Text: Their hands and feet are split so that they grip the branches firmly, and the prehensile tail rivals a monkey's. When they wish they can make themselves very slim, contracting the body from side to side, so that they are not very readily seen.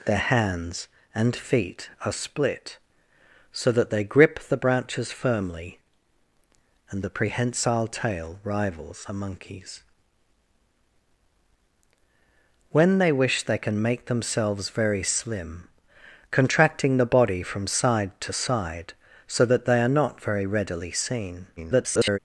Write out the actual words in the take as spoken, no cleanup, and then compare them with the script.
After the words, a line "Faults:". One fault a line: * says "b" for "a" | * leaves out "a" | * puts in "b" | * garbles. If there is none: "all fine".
Their hands and feet are split so that they grip the branches firmly, and the prehensile tail rivals a monkey's. When they wish they can make themselves very slim, contracting the body from side to side, so that they are not very readily seen. [garbled]
Faults:
* garbles